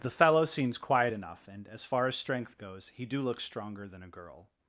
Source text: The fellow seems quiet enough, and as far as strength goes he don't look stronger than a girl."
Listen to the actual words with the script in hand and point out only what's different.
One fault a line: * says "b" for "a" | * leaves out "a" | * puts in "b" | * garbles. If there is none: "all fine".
* says "do" for "don't"